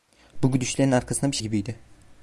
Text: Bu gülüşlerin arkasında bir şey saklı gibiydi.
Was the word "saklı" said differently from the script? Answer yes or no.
yes